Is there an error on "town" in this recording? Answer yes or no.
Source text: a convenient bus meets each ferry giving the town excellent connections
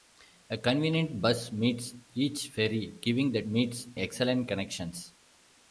yes